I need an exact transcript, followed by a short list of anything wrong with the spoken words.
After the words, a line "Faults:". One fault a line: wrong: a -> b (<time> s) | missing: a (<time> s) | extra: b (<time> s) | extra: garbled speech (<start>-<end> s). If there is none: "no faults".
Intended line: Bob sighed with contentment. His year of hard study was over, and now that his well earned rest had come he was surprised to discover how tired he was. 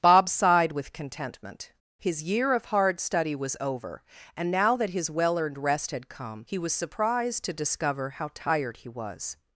Bob sighed with contentment. His year of hard study was over, and now that his well earned rest had come he was surprised to discover how tired he was.
Faults:
no faults